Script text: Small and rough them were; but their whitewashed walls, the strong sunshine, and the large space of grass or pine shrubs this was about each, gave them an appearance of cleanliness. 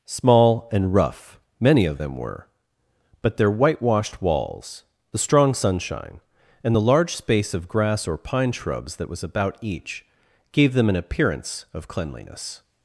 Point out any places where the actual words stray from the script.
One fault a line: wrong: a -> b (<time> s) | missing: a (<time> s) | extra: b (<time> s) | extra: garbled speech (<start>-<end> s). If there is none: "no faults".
extra: many of (1.6 s)
wrong: this -> that (9.0 s)